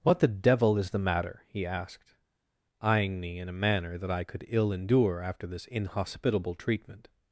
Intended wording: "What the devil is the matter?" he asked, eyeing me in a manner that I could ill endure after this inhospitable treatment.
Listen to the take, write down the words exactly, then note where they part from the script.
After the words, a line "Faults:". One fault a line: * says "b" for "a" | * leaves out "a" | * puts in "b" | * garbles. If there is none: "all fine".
"What the devil is the matter?" he asked, eyeing me in a manner that I could ill endure after this inhospitable treatment.
Faults:
all fine